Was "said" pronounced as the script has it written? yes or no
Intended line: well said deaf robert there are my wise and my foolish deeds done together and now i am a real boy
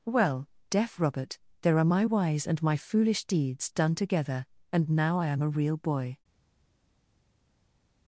no